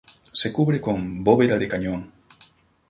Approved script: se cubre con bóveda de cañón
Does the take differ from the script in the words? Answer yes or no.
no